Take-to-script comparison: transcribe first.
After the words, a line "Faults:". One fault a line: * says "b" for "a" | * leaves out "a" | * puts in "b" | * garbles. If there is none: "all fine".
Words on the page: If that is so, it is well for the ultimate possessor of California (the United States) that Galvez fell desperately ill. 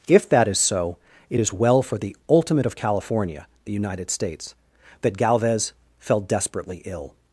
If that is so, it is well for the ultimate of California (the United States) that Galvez fell desperately ill.
Faults:
* leaves out "possessor"